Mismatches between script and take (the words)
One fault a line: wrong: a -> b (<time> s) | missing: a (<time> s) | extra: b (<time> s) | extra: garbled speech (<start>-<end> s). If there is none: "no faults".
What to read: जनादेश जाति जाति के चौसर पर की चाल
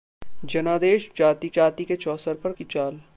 no faults